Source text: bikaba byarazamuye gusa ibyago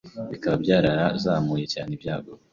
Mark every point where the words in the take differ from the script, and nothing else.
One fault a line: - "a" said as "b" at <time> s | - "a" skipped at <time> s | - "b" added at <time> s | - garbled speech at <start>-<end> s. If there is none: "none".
- "gusa" said as "cyane" at 1.7 s